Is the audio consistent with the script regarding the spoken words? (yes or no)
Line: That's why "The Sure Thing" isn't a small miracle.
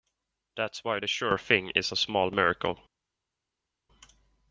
no